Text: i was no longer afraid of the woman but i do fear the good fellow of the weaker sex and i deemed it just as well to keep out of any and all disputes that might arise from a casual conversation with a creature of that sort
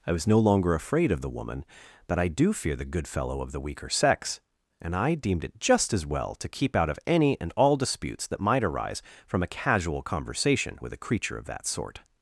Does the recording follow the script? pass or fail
pass